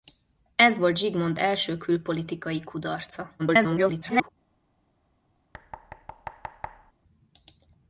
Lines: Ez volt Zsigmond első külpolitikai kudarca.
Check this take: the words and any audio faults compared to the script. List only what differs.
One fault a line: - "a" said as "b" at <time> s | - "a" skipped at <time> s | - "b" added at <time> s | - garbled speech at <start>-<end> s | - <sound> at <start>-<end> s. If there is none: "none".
- garbled speech at 3.4-4.3 s
- thud at 5.5-6.9 s